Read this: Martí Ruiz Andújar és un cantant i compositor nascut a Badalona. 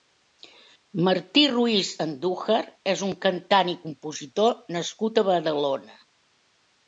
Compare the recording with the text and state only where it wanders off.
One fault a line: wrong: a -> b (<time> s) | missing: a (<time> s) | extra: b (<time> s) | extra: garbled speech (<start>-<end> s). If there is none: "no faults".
no faults